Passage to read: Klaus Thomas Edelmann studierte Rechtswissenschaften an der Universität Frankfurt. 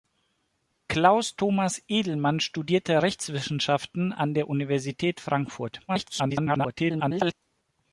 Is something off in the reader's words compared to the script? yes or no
yes